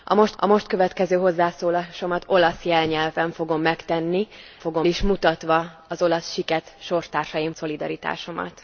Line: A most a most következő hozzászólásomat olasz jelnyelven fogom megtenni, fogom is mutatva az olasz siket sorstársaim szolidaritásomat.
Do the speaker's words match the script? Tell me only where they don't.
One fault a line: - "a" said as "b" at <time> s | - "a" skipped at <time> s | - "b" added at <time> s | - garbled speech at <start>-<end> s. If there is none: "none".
none